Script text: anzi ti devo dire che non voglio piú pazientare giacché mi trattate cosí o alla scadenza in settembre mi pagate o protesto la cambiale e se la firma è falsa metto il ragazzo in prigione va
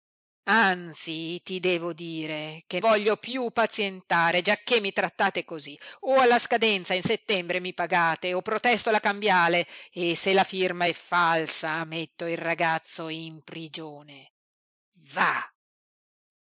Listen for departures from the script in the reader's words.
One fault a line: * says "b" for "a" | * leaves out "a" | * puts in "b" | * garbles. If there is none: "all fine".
* leaves out "non"